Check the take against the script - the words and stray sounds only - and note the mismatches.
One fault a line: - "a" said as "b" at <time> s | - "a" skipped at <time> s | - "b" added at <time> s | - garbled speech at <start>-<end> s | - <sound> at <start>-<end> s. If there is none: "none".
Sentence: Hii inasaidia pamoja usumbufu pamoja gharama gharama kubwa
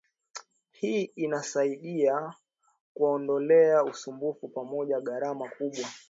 - "pamoja" said as "kuwaondolea" at 2.9 s
- "gharama" skipped at 5.5 s